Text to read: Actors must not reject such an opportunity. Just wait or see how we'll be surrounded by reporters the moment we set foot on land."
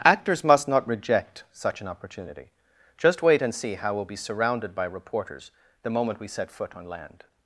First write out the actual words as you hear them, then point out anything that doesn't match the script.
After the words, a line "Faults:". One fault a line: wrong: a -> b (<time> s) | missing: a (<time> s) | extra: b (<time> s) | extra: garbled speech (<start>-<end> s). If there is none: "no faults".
Actors must not reject such an opportunity. Just wait and see how we'll be surrounded by reporters the moment we set foot on land."
Faults:
wrong: or -> and (3.4 s)